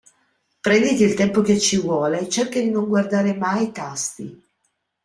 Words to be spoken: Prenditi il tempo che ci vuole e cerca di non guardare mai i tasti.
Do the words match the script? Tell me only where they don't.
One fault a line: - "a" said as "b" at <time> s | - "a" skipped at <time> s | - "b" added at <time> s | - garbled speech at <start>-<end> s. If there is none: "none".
none